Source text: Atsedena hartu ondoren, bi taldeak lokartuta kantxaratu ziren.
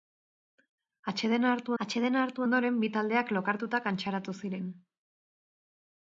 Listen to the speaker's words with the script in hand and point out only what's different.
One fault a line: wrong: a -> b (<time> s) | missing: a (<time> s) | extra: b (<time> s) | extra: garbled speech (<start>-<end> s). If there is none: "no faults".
extra: atsedena hartu (1.8 s)